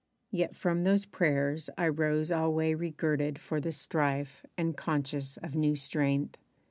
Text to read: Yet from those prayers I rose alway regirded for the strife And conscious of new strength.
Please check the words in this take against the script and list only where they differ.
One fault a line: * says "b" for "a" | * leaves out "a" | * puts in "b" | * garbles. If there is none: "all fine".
all fine